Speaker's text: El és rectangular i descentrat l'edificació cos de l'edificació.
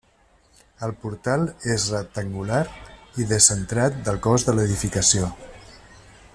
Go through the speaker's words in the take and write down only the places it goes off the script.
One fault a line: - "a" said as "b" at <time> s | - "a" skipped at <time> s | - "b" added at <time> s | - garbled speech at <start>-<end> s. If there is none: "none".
- "portal" added at 1.0 s
- "l'edificació" said as "del" at 4.1 s